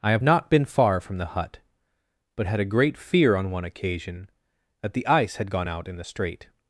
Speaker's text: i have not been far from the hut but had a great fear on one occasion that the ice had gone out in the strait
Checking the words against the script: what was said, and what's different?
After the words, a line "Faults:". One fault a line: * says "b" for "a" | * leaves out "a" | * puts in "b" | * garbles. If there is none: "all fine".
i have not been far from the hut but had a great fear on one occasion that the ice had gone out in the strait
Faults:
all fine